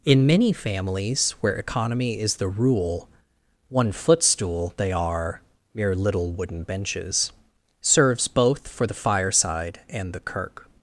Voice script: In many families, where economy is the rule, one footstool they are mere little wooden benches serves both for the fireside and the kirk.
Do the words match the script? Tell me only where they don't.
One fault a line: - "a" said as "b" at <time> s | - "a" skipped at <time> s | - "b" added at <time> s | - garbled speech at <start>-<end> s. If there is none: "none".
none